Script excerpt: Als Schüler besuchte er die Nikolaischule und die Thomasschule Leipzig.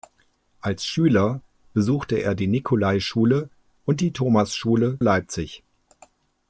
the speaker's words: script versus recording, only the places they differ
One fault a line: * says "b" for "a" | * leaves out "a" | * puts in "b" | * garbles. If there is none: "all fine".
all fine